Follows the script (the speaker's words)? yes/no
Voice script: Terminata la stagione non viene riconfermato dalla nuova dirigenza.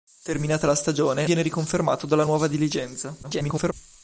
no